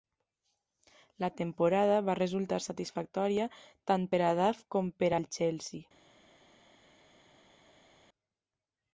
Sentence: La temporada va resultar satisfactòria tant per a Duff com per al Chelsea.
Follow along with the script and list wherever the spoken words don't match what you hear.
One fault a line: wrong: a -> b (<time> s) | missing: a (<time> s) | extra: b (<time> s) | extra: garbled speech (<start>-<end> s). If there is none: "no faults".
no faults